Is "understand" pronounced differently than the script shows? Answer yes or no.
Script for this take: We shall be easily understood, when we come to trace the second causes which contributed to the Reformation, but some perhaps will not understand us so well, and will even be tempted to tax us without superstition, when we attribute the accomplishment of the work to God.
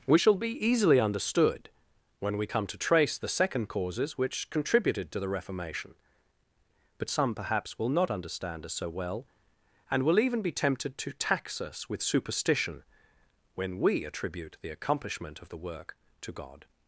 no